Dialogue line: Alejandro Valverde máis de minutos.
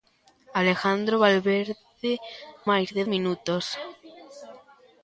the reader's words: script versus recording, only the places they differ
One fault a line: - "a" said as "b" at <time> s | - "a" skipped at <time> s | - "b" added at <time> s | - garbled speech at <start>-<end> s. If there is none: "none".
none